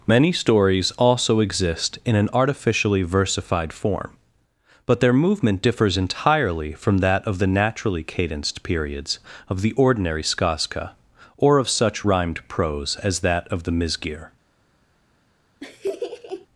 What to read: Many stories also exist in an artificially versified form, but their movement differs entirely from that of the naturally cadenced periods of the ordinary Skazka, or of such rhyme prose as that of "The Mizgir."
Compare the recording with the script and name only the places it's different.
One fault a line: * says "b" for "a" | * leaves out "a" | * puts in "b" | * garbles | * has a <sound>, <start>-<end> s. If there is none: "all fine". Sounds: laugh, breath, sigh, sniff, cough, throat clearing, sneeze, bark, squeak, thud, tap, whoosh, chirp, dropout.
* says "rhymed" for "rhyme"
* has a laugh, 15.6-16.5 s